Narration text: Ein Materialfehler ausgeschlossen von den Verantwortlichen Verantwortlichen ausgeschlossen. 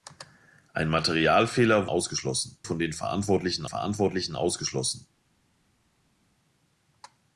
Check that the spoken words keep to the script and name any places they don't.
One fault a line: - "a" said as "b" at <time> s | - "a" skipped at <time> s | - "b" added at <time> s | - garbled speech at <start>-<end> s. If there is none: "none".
none